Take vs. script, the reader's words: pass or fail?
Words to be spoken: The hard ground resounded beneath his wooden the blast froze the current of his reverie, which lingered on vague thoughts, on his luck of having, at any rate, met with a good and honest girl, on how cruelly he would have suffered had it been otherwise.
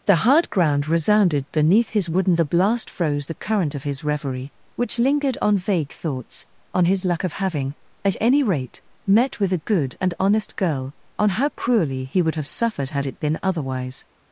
pass